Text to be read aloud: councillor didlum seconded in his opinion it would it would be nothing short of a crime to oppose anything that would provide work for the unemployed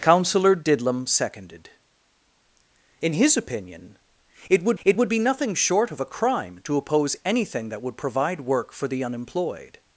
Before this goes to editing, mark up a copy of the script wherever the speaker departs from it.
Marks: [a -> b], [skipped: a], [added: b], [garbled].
councillor didlum seconded in his opinion it would it would be nothing short of a crime to oppose anything that would provide work for the unemployed